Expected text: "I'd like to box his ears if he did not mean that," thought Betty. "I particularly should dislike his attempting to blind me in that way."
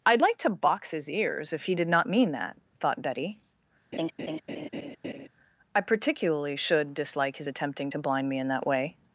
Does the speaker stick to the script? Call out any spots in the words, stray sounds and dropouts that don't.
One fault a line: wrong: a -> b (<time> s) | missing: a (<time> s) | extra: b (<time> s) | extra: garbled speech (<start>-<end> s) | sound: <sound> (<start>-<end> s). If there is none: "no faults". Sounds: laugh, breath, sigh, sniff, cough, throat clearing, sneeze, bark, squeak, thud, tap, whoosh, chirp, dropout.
sound: laugh (3.9-5.3 s)